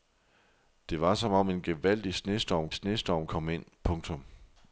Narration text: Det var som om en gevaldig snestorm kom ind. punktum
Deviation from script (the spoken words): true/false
true